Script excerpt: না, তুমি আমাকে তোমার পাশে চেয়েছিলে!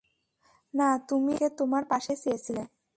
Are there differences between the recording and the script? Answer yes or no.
no